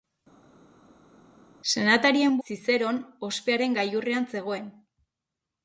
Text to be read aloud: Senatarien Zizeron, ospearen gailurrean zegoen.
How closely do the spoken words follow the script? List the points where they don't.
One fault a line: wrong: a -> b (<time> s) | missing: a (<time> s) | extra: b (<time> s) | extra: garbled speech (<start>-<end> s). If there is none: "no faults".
no faults